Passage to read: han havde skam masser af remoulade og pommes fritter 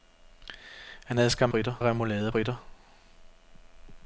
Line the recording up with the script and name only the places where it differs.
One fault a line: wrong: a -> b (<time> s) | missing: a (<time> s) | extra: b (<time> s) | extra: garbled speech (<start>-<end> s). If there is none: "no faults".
wrong: masser -> fritter (1.5 s)
missing: pommes (2.3 s)